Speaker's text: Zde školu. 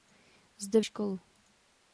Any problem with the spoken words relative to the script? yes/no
no